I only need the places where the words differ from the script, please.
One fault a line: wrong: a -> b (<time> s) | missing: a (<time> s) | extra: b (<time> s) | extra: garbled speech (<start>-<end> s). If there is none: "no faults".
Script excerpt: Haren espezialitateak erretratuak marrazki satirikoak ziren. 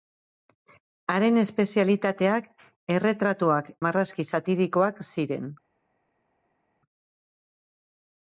no faults